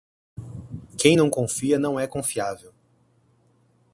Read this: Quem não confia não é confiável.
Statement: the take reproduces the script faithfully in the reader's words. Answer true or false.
true